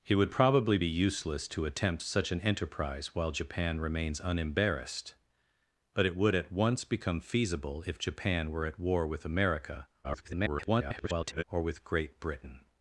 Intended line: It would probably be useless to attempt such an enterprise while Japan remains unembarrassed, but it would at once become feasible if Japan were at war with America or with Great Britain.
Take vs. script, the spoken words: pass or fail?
fail